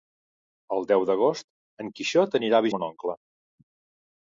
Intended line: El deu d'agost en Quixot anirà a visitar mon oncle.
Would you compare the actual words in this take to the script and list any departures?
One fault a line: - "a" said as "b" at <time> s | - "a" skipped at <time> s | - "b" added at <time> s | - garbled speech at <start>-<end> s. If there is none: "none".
- "visitar" skipped at 2.7 s